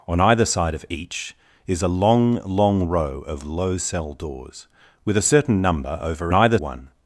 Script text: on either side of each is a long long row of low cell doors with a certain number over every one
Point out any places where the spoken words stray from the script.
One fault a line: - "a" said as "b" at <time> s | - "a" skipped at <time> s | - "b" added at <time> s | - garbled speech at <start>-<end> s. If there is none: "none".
- "every" said as "either" at 6.3 s